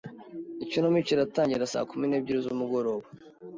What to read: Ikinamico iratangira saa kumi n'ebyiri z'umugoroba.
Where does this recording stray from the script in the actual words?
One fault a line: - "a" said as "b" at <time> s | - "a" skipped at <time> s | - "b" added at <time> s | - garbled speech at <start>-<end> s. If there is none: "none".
none